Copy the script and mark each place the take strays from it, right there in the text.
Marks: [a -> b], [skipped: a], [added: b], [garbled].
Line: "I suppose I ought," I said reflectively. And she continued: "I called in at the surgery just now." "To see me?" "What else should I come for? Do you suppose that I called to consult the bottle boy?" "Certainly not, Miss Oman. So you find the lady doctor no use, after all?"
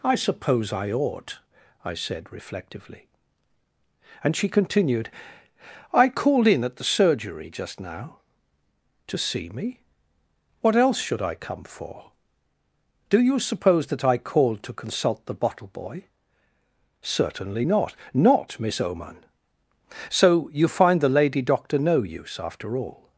"I suppose I ought," I said reflectively. And she continued: "I called in at the surgery just now." "To see me?" "What else should I come for? Do you suppose that I called to consult the bottle boy?" "Certainly not, [added: not] Miss Oman. So you find the lady doctor no use, after all?"